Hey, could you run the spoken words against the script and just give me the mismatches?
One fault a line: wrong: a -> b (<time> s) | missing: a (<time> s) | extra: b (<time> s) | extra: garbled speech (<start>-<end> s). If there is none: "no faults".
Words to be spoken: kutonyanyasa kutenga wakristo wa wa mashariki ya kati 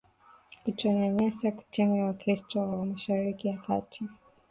no faults